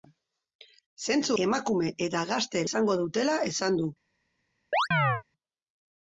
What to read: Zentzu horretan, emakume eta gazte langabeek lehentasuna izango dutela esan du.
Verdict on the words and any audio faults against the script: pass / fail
fail